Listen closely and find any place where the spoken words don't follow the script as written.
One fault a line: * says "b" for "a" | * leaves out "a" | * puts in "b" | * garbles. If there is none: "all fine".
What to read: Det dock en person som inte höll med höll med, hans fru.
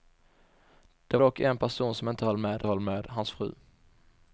all fine